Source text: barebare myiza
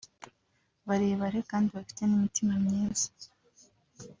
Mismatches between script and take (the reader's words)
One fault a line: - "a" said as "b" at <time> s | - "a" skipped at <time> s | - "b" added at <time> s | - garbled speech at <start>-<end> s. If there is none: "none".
- "kandi bafite n'imitima" added at 1.5 s